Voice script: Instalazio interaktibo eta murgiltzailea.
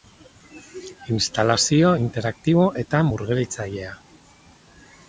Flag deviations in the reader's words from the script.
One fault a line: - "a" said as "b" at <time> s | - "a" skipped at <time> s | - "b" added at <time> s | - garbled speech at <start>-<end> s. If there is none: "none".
none